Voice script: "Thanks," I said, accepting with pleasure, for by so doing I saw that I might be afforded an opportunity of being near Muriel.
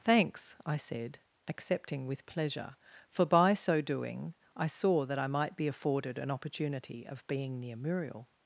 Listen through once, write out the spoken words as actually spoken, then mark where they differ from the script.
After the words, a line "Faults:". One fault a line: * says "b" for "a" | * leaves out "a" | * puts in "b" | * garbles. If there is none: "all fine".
"Thanks," I said, accepting with pleasure, for by so doing I saw that I might be afforded an opportunity of being near Muriel.
Faults:
all fine